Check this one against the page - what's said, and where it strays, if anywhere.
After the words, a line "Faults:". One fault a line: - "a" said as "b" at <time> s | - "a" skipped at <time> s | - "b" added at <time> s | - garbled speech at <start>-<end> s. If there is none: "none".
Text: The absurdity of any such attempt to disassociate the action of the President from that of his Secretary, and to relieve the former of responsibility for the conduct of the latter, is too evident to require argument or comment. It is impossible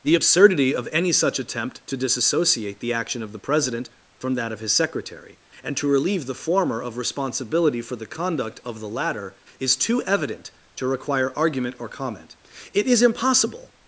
The absurdity of any such attempt to disassociate the action of the President from that of his Secretary, and to relieve the former of responsibility for the conduct of the latter, is too evident to require argument or comment. It is impossible
Faults:
none